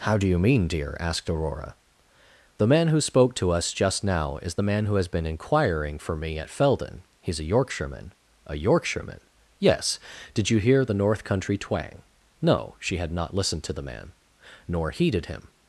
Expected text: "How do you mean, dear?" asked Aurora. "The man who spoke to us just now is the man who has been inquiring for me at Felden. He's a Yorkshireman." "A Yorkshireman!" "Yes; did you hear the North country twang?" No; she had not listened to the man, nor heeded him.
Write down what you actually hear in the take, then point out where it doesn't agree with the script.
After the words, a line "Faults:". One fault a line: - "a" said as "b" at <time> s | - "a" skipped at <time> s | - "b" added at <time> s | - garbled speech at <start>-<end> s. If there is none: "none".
"How do you mean, dear?" asked Aurora. "The man who spoke to us just now is the man who has been inquiring for me at Felden. He's a Yorkshireman." "A Yorkshireman!" "Yes; did you hear the North country twang?" No; she had not listened to the man, nor heeded him.
Faults:
none